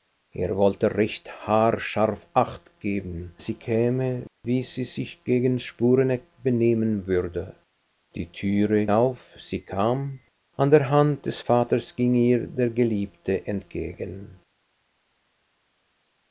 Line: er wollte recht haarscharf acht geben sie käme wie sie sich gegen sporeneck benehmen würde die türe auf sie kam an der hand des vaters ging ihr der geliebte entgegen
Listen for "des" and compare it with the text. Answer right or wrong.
right